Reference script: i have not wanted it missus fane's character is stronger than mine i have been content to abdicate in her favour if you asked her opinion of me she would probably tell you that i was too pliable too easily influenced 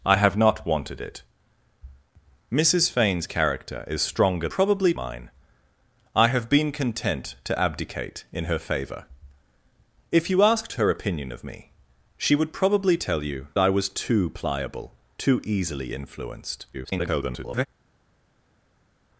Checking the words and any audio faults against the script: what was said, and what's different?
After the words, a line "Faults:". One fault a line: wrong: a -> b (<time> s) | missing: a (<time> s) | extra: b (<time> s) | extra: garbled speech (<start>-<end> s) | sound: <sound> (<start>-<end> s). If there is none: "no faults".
i have not wanted it missus fane's character is stronger probably mine i have been content to abdicate in her favour if you asked her opinion of me she would probably tell you i was too pliable too easily influenced [garbled]
Faults:
wrong: than -> probably (4.5 s)
missing: that (13.5 s)
extra: garbled speech (16.7-17.7 s)